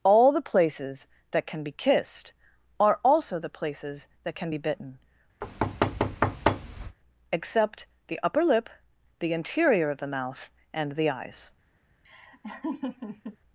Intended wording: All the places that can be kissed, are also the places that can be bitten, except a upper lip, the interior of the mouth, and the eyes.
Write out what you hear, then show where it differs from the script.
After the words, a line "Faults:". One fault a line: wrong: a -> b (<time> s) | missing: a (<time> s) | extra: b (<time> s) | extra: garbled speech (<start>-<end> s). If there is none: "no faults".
All the places that can be kissed, are also the places that can be bitten, except the upper lip, the interior of the mouth, and the eyes.
Faults:
wrong: a -> the (8.1 s)